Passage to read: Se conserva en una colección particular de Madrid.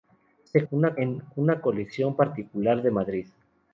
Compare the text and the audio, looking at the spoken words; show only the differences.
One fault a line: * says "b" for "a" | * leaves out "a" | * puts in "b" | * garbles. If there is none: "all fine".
* says "una" for "conserva"